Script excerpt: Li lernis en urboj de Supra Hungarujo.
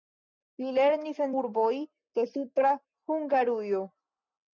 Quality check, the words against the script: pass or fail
pass